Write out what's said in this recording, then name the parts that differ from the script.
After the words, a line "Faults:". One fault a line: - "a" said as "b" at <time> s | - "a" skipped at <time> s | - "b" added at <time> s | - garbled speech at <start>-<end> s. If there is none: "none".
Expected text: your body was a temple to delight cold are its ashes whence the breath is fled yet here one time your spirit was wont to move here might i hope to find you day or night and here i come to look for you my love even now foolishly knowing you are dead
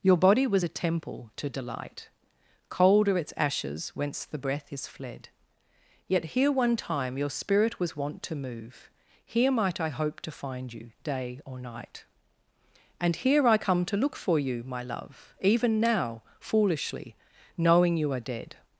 your body was a temple to delight cold are its ashes whence the breath is fled yet here one time your spirit was wont to move here might i hope to find you day or night and here i come to look for you my love even now foolishly knowing you are dead
Faults:
none